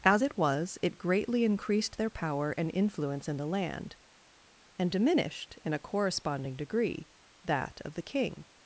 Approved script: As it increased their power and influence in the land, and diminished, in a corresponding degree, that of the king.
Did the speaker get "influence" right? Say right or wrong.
right